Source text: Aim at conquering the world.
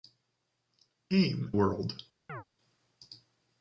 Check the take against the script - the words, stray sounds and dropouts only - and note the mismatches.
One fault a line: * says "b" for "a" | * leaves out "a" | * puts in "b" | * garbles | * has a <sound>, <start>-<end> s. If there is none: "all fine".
* leaves out "at conquering the"
* has a chirp, 2.3-2.4 s